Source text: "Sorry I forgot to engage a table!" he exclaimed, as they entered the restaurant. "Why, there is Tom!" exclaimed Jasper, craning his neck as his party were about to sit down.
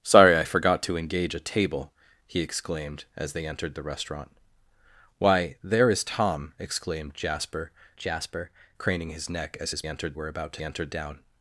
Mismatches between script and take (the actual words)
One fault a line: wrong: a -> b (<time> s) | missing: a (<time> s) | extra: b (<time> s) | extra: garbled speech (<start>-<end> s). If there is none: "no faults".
extra: Jasper (8.0 s)
wrong: party -> entered (9.9 s)
wrong: sit -> entered (10.6 s)